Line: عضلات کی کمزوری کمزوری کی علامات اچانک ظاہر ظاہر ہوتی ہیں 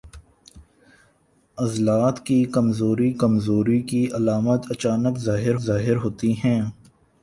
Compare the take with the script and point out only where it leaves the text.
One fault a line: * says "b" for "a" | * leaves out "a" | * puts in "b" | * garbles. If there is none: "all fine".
all fine